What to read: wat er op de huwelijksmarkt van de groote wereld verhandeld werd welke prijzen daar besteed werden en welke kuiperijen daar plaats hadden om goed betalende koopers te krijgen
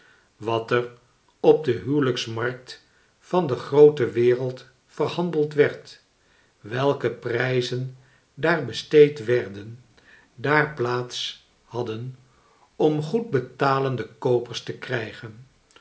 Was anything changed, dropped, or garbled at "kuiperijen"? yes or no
yes